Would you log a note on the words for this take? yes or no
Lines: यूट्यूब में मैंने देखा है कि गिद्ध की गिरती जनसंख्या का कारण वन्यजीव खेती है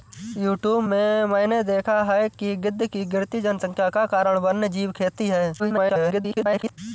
yes